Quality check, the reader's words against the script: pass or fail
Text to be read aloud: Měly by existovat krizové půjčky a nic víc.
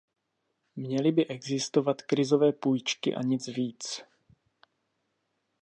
pass